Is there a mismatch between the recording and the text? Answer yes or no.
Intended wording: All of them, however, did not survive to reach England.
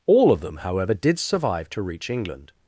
yes